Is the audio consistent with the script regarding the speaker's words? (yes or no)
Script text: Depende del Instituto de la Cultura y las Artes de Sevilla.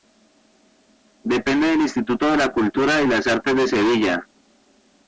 yes